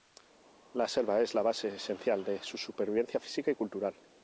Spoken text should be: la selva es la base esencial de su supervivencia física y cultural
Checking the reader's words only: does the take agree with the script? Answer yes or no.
yes